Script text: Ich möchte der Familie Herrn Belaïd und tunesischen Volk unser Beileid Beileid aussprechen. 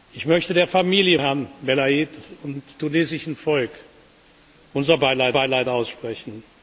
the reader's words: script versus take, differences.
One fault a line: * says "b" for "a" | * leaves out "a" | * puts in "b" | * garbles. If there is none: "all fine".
all fine